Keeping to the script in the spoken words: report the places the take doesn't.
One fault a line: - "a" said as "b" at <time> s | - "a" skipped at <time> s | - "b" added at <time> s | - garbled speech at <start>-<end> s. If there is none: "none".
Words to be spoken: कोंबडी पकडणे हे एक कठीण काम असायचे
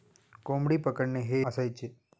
- "एक कठीण काम" skipped at 1.4 s